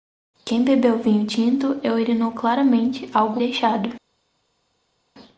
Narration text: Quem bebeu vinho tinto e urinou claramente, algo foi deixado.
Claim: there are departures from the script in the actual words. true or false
true